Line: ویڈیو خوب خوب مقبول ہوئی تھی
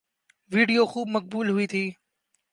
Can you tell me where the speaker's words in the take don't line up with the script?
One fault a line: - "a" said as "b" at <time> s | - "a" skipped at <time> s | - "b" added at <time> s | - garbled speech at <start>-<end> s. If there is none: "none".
- "خوب" skipped at 1.1 s